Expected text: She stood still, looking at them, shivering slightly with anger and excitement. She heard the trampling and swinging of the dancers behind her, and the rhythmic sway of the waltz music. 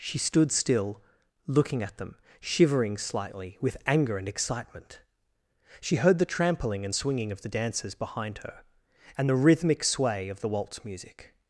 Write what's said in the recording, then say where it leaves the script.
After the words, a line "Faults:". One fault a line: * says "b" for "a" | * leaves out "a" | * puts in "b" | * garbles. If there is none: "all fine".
She stood still, looking at them, shivering slightly with anger and excitement. She heard the trampling and swinging of the dancers behind her, and the rhythmic sway of the waltz music.
Faults:
all fine